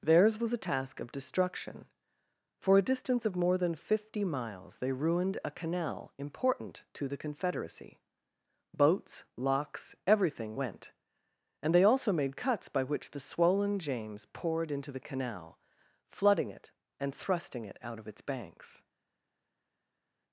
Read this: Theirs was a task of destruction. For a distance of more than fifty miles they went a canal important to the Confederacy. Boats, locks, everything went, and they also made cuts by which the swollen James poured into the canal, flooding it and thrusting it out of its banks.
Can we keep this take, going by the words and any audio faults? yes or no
no